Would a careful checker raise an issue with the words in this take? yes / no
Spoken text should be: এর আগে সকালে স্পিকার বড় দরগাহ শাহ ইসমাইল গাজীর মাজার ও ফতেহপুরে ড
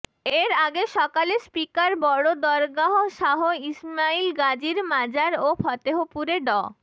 no